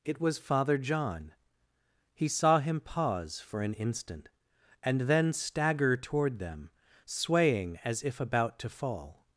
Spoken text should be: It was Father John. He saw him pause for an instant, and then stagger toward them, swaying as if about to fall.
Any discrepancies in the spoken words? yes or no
no